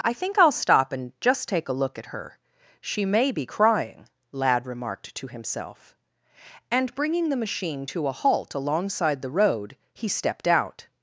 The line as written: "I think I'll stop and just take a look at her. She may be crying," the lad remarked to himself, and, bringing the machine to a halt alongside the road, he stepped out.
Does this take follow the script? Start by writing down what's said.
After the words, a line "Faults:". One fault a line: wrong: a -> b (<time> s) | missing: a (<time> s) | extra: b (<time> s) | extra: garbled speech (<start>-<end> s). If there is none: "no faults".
"I think I'll stop and just take a look at her. She may be crying," lad remarked to himself, and, bringing the machine to a halt alongside the road, he stepped out.
Faults:
missing: the (4.1 s)